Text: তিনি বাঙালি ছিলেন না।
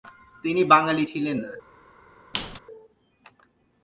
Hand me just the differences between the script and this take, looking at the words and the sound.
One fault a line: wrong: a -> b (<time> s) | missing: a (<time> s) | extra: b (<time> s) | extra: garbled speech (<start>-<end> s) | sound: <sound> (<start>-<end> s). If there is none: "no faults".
sound: squeak (2.3-2.6 s)